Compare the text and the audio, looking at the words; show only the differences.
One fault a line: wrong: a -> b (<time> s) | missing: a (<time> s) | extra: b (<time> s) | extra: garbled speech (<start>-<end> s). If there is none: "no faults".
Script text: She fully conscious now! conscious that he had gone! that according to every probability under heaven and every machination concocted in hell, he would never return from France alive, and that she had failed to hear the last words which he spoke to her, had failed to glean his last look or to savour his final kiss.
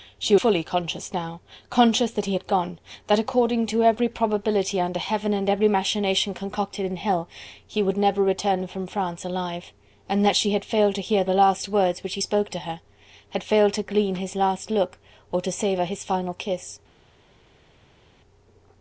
no faults